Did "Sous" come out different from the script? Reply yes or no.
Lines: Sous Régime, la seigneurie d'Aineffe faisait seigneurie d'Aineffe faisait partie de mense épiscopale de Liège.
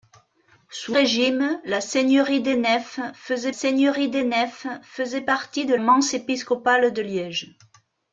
no